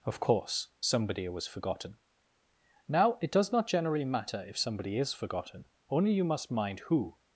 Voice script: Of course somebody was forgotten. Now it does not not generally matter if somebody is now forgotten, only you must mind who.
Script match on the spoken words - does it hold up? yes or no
no